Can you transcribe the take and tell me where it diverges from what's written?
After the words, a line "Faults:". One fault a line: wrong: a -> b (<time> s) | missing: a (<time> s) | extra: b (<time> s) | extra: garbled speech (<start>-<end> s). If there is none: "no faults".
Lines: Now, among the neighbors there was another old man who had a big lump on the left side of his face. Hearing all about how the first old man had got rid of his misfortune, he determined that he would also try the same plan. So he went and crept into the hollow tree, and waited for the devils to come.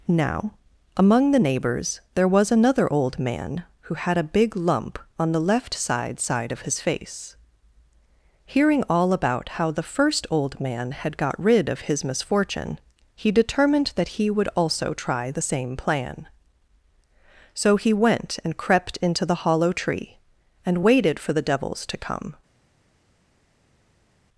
Now, among the neighbors there was another old man who had a big lump on the left side side of his face. Hearing all about how the first old man had got rid of his misfortune, he determined that he would also try the same plan. So he went and crept into the hollow tree, and waited for the devils to come.
Faults:
extra: side (6.2 s)